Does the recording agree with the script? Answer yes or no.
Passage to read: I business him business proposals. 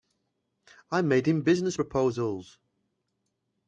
no